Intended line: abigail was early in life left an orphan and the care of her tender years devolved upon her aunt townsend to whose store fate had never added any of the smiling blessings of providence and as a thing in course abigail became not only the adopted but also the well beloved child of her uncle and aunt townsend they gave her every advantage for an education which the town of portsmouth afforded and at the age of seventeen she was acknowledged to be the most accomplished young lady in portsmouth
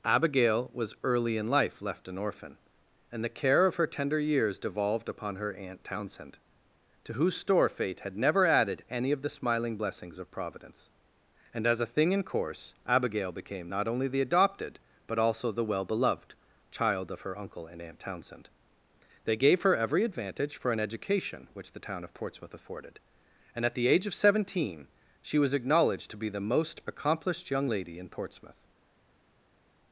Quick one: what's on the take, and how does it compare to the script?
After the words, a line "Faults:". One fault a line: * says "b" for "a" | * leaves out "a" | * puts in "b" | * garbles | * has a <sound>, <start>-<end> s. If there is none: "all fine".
abigail was early in life left an orphan and the care of her tender years devolved upon her aunt townsend to whose store fate had never added any of the smiling blessings of providence and as a thing in course abigail became not only the adopted but also the well beloved child of her uncle and aunt townsend they gave her every advantage for an education which the town of portsmouth afforded and at the age of seventeen she was acknowledged to be the most accomplished young lady in portsmouth
Faults:
all fine